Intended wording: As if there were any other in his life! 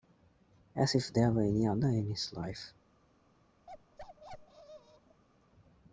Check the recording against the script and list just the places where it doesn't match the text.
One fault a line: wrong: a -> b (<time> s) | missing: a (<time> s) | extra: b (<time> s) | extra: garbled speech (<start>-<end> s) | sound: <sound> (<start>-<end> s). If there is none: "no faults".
sound: bark (3.7-5.2 s)